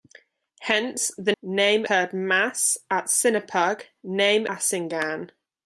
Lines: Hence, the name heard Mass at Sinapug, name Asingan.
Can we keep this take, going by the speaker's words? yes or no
yes